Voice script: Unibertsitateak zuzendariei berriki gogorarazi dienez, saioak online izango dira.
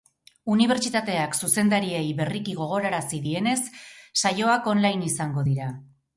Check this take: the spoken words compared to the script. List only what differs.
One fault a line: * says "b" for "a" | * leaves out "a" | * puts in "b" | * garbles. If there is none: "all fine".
all fine